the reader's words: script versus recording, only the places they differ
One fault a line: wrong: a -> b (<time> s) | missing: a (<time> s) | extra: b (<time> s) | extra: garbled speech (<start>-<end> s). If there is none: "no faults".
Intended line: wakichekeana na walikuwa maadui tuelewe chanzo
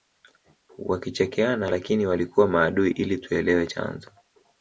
wrong: na -> lakini (1.7 s)
extra: ili (2.9 s)